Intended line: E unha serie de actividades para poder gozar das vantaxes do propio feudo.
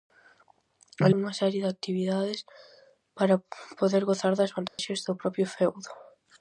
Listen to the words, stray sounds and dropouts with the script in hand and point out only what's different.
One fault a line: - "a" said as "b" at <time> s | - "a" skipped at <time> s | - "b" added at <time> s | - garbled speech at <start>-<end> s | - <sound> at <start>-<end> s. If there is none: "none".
- dropout at 4.7-4.8 s